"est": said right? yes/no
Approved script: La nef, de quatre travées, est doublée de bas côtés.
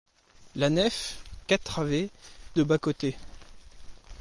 no